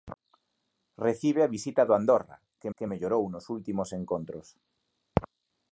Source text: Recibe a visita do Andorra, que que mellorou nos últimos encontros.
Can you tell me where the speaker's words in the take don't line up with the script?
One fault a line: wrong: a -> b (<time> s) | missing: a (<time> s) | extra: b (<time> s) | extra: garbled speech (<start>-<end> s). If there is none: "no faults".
no faults